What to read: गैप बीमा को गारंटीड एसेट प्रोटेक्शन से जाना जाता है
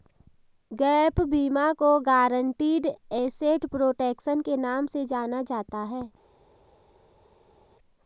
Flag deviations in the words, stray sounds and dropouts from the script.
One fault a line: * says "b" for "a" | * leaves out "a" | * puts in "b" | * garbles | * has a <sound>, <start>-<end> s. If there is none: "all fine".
* puts in "के नाम"